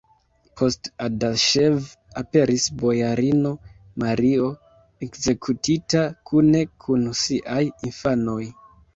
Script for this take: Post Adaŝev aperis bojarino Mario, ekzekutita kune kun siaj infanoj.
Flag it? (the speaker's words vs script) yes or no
no